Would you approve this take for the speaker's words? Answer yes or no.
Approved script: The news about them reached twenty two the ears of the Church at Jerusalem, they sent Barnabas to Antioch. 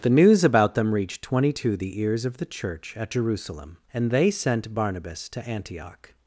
no